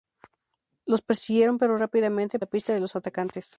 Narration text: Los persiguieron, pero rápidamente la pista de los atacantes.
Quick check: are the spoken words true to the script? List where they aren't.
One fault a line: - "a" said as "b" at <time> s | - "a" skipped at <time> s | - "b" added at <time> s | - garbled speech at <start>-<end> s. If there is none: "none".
none